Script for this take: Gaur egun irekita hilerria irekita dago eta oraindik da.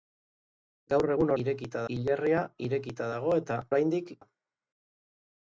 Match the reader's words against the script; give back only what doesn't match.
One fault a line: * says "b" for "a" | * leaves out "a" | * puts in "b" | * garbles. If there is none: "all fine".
all fine